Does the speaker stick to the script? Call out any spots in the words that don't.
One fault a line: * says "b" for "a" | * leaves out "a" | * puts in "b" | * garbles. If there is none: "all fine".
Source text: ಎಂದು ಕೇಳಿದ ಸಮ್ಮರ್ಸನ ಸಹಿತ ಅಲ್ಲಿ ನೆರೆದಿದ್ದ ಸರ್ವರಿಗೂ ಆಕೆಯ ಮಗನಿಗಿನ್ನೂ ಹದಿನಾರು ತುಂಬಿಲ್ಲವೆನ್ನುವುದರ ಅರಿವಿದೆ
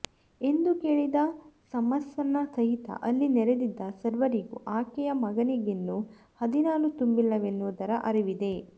all fine